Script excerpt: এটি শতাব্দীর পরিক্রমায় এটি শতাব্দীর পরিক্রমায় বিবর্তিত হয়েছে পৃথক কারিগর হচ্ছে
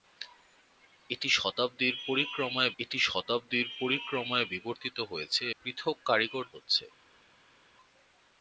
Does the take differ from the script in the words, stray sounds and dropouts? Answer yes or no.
no